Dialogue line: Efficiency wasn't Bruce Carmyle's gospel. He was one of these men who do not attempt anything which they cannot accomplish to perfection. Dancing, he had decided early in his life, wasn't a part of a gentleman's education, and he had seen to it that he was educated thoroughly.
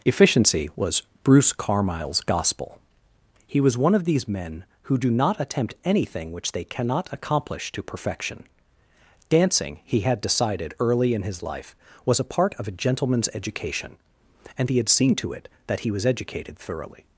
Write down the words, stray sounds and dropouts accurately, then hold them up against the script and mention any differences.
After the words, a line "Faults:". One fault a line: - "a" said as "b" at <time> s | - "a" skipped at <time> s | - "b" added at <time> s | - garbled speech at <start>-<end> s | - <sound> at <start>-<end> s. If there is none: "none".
Efficiency was Bruce Carmyle's gospel. He was one of these men who do not attempt anything which they cannot accomplish to perfection. Dancing, he had decided early in his life, was a part of a gentleman's education, and he had seen to it that he was educated thoroughly.
Faults:
- "wasn't" said as "was" at 0.8 s
- "wasn't" said as "was" at 12.1 s